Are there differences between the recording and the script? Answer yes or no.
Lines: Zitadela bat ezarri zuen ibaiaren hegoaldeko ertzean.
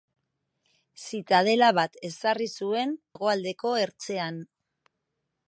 yes